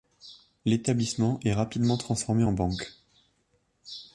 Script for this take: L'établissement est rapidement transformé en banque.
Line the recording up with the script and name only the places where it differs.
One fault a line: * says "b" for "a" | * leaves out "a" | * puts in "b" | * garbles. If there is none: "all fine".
all fine